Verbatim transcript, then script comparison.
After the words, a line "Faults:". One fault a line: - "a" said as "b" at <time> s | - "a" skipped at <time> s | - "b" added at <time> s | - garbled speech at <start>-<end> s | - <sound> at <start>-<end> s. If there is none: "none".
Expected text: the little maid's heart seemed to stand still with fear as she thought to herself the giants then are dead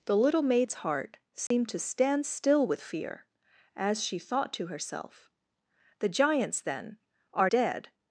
the little maid's heart seemed to stand still with fear as she thought to herself the giants then are dead
Faults:
- dropout at 1.5-1.5 s